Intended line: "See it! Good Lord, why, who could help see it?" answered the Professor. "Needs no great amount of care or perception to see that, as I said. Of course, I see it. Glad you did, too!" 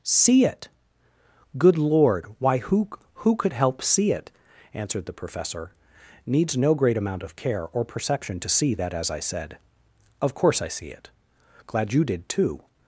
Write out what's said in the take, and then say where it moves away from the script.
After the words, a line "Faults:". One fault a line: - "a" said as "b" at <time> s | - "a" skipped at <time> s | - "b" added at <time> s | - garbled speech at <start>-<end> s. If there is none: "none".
"See it! Good Lord, why, who who could help see it?" answered the Professor. "Needs no great amount of care or perception to see that, as I said. Of course, I see it. Glad you did, too!"
Faults:
- "who" added at 3.1 s